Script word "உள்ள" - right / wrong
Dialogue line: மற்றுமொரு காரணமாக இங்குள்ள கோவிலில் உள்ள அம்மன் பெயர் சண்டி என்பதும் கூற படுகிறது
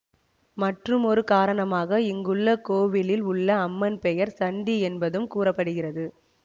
right